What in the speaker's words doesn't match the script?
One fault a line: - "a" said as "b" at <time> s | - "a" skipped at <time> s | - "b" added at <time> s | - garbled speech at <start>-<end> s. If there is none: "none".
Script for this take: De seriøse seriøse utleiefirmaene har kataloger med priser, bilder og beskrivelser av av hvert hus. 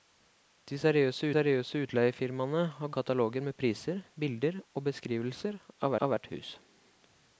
none